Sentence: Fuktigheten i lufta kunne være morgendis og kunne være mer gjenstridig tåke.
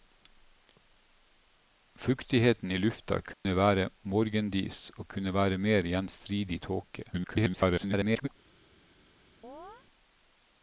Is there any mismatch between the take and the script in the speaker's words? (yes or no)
yes